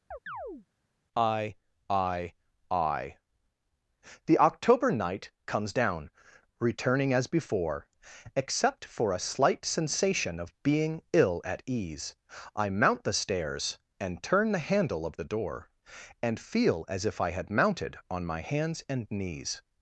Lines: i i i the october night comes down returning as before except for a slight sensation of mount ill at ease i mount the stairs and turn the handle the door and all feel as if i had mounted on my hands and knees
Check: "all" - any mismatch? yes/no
yes